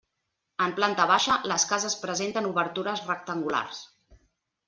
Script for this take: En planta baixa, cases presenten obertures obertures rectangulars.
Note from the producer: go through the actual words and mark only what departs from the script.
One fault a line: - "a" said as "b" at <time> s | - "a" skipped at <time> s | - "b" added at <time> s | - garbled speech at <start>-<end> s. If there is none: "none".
- "les" added at 1.5 s
- "obertures" skipped at 3.0 s